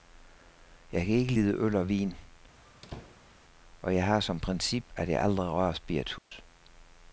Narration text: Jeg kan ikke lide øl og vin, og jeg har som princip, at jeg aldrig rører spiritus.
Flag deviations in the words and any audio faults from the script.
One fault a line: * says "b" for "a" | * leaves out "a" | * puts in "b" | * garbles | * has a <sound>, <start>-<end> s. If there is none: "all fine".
* has a squeak, 2.6-3.3 s
* has a dropout, 6.2-6.3 s